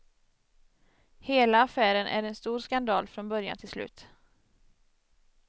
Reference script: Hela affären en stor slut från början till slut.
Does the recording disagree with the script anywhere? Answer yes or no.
yes